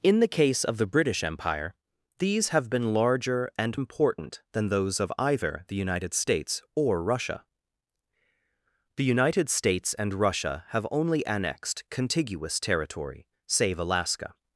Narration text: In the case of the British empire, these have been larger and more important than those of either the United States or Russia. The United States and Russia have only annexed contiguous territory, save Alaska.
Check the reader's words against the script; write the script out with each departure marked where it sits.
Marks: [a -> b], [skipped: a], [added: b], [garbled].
In the case of the British empire, these have been larger and [skipped: more] important than those of either the United States or Russia. The United States and Russia have only annexed contiguous territory, save Alaska.